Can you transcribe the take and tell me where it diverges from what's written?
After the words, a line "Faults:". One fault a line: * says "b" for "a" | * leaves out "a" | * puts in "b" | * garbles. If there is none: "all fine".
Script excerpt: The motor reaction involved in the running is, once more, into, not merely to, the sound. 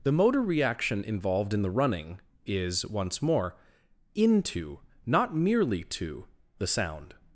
The motor reaction involved in the running is, once more, into, not merely to, the sound.
Faults:
all fine